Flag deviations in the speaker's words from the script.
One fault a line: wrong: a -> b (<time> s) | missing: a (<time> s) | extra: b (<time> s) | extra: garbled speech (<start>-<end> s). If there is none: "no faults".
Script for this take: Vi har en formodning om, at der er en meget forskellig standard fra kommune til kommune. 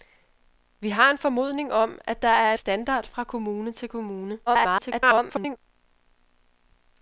missing: en meget forskellig (2.5 s)
extra: garbled speech (4.5-5.6 s)